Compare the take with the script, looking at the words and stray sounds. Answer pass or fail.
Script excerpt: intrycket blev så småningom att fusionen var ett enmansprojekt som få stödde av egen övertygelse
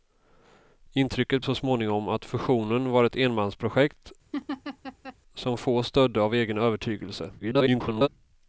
fail